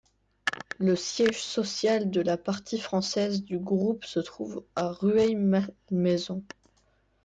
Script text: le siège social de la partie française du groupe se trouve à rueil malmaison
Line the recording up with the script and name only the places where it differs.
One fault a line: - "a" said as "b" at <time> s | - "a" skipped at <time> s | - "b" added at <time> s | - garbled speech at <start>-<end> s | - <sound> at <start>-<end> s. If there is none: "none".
none